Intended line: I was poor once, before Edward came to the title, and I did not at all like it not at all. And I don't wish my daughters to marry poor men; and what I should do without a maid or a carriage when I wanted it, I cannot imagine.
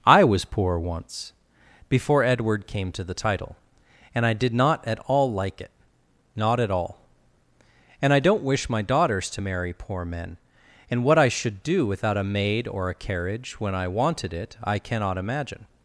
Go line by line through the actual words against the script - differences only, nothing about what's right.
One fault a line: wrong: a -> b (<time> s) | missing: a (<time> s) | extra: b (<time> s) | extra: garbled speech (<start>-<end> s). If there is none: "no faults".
no faults